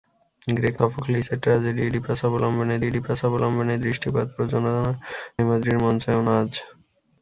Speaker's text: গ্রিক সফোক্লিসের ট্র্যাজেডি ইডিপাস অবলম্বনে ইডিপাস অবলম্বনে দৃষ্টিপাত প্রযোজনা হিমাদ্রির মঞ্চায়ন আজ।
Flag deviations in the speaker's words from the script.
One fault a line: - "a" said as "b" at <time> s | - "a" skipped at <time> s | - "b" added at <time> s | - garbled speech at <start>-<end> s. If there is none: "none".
none